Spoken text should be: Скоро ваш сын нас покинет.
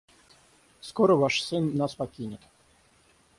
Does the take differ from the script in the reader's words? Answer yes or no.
no